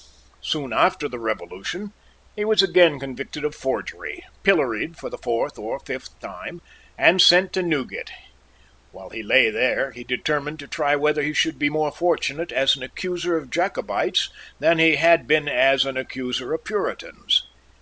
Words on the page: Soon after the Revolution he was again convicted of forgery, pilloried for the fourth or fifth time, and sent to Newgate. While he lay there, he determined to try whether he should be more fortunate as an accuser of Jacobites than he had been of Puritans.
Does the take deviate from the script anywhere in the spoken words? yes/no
yes